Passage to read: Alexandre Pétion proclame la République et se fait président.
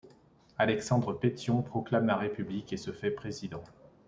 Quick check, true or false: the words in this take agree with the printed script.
true